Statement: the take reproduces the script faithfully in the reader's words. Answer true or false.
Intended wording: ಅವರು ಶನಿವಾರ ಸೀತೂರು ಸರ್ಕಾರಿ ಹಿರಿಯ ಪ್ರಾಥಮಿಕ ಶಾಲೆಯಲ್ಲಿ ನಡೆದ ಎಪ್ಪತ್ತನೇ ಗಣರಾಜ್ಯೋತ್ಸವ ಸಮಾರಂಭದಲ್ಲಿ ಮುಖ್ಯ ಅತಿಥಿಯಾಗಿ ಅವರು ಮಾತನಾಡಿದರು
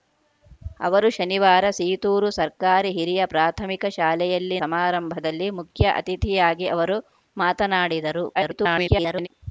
false